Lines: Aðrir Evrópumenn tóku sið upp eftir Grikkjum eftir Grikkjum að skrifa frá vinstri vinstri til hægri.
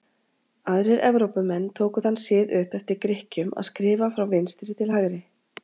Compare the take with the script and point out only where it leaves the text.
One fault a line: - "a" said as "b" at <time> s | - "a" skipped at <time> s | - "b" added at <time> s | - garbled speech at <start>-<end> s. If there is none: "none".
- "þann" added at 2.0 s
- "eftir Grikkjum" skipped at 3.5 s
- "vinstri" skipped at 4.8 s